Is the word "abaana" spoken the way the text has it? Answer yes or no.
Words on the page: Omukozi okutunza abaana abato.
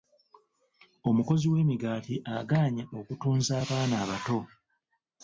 yes